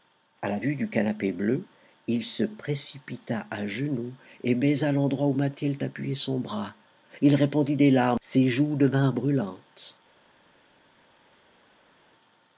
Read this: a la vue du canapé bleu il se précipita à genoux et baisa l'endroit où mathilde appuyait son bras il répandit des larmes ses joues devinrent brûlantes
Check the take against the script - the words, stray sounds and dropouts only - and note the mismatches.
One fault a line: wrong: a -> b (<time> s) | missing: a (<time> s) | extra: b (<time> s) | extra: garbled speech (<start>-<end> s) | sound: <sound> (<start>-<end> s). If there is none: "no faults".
no faults